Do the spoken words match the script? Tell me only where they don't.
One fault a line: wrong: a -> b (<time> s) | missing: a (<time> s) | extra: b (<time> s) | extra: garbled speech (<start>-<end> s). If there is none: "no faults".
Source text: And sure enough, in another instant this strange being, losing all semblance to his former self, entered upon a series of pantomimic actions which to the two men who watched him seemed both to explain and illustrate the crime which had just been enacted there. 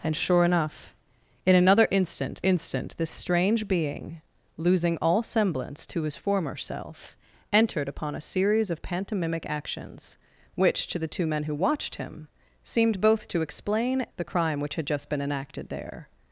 extra: instant (2.4 s)
missing: and illustrate (14.1 s)